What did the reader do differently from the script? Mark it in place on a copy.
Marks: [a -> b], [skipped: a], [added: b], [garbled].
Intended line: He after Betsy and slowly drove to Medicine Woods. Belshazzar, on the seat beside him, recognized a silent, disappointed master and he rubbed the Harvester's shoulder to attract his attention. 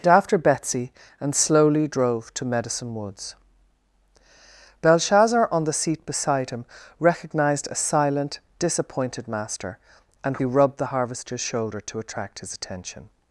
He after Betsy and slowly drove to Medicine Woods. Belshazzar, on the seat beside him, recognized a silent, disappointed master and he rubbed the Harvester's shoulder to attract his attention.